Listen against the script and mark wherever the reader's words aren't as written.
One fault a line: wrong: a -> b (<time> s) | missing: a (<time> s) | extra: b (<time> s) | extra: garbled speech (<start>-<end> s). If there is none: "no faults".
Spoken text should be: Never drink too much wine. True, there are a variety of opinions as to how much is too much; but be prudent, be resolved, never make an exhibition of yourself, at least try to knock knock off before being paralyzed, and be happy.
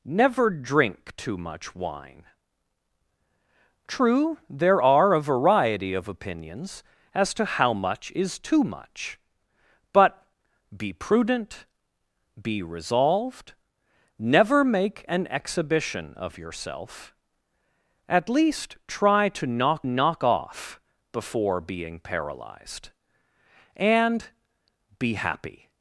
no faults